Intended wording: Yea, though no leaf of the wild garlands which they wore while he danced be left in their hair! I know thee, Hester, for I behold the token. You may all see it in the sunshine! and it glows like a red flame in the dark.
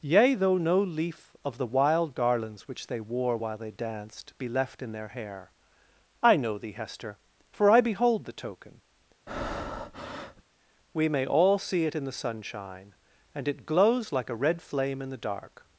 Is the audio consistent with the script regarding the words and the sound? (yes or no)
no